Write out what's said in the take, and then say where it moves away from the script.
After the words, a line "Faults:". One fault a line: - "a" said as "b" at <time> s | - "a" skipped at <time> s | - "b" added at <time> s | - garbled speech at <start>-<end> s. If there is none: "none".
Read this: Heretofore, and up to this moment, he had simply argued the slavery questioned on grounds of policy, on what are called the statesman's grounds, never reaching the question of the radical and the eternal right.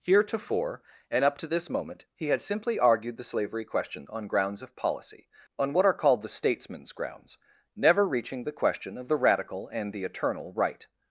Heretofore, and up to this moment, he had simply argued the slavery question on grounds of policy, on what are called the statesman's grounds, never reaching the question of the radical and the eternal right.
Faults:
- "questioned" said as "question" at 3.6 s